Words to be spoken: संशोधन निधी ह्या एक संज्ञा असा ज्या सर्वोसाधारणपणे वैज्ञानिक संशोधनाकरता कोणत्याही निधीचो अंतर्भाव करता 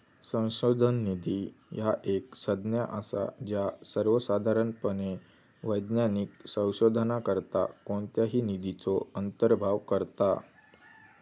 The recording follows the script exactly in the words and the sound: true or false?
true